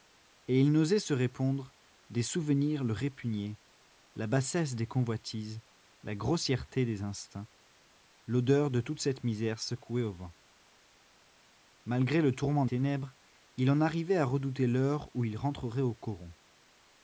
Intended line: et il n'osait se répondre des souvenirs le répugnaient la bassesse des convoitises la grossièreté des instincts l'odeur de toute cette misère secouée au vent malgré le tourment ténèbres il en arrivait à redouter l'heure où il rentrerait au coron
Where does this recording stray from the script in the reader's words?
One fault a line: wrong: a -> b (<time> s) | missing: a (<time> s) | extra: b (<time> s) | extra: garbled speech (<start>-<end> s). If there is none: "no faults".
no faults